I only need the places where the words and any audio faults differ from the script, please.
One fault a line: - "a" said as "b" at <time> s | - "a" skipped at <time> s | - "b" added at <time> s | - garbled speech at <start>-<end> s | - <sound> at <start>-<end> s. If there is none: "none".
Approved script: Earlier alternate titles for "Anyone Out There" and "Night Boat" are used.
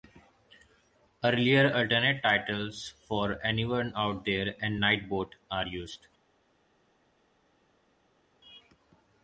none